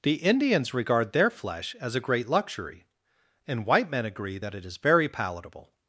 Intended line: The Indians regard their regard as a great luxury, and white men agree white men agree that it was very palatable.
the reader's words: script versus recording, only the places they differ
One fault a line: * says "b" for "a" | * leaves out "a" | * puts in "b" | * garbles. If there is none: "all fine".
* says "flesh" for "regard"
* leaves out "white men agree"
* says "is" for "was"